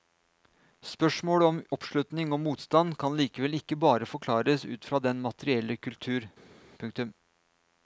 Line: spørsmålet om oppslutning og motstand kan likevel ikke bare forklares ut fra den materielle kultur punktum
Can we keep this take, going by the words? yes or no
yes